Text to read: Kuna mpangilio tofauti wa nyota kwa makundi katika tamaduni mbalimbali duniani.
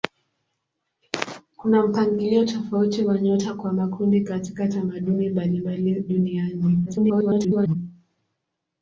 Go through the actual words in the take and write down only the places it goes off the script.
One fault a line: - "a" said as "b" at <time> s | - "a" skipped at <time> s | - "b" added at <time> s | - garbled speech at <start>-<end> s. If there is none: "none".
- garbled speech at 6.9-7.8 s